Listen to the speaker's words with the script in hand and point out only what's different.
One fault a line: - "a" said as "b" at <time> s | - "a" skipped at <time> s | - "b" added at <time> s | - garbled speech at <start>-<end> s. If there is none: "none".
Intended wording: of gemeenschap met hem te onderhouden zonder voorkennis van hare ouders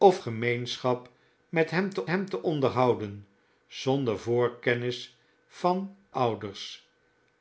- "hem te" added at 2.1 s
- "hare" skipped at 6.0 s